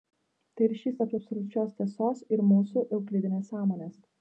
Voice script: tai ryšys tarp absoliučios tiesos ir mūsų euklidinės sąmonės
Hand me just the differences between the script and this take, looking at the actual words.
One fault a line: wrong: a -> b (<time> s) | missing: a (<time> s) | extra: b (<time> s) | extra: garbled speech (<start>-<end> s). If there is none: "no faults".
no faults